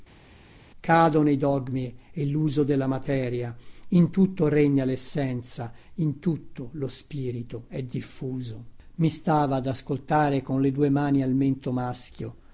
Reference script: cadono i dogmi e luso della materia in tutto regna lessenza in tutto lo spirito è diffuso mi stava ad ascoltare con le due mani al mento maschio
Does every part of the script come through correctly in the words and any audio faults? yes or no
yes